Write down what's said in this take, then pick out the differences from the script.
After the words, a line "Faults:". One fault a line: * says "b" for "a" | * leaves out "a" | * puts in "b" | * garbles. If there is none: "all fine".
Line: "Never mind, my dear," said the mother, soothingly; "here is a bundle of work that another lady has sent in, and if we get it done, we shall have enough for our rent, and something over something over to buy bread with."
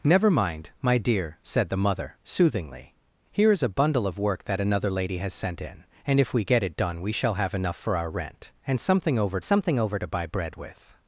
"Never mind, my dear," said the mother, soothingly; "here is a bundle of work that another lady has sent in, and if we get it done, we shall have enough for our rent, and something over something over to buy bread with."
Faults:
all fine